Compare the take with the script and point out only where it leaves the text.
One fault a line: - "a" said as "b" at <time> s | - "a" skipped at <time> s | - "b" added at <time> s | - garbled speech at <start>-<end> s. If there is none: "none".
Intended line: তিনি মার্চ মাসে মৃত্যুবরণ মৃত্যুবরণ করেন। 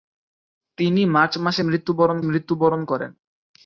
none